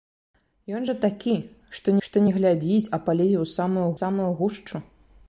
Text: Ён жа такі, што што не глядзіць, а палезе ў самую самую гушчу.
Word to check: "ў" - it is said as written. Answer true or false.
true